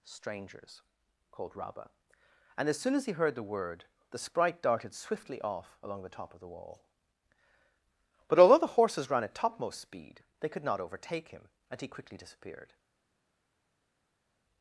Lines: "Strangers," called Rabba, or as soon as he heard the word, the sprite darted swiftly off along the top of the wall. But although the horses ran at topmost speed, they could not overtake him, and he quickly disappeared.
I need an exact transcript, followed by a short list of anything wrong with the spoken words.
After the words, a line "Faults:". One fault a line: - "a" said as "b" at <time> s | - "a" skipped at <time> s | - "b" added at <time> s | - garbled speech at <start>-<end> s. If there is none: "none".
"Strangers," called Rabba, and as soon as he heard the word, the sprite darted swiftly off along the top of the wall. But although the horses ran at topmost speed, they could not overtake him, and he quickly disappeared.
Faults:
- "or" said as "and" at 2.6 s